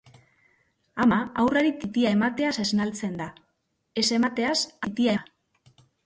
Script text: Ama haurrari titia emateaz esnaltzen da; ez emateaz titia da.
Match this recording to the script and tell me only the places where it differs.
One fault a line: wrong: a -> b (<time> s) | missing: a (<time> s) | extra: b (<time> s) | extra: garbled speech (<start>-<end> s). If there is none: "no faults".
no faults